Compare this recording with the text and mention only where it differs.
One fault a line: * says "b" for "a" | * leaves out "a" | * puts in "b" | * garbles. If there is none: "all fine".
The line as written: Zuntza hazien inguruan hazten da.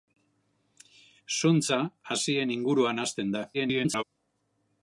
* garbles